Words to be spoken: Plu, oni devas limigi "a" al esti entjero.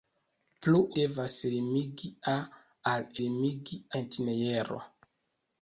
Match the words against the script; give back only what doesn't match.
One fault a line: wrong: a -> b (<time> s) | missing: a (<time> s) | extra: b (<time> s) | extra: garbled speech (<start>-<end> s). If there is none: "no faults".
missing: oni (0.8 s)
wrong: esti -> limigi (3.2 s)